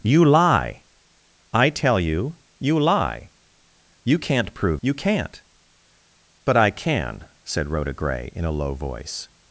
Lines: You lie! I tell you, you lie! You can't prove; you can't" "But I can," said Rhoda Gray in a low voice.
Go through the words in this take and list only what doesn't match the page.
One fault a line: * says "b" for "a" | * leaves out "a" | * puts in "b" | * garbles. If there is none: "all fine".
all fine